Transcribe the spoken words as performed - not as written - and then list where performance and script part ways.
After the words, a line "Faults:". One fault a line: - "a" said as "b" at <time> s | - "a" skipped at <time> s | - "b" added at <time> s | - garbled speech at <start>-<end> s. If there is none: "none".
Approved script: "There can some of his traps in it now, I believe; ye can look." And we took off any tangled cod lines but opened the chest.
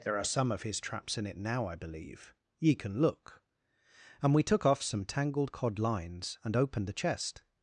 "There are some of his traps in it now, I believe; ye can look." And we took off some tangled cod lines and opened the chest.
Faults:
- "can" said as "are" at 0.2 s
- "any" said as "some" at 4.8 s
- "but" said as "and" at 6.4 s